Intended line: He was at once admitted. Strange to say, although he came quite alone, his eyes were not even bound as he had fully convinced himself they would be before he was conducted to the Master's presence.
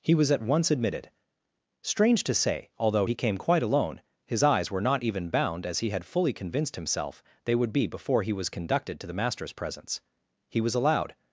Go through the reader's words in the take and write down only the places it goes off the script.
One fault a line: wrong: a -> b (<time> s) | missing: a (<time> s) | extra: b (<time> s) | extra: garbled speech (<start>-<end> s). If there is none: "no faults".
extra: He was allowed (10.5 s)